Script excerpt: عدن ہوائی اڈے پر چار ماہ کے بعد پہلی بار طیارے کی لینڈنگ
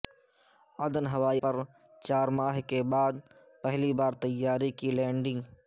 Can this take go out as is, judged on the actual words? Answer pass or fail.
fail